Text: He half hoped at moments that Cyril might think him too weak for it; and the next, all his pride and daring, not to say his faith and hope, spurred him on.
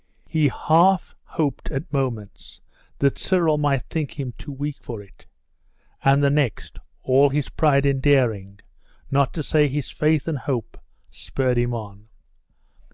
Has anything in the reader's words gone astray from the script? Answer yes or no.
no